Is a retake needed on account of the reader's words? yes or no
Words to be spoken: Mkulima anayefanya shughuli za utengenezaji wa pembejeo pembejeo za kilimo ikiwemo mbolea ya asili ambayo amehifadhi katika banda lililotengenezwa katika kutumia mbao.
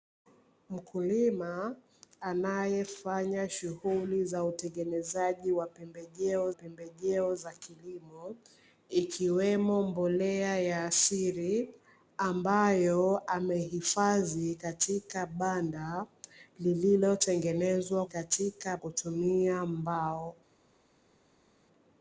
no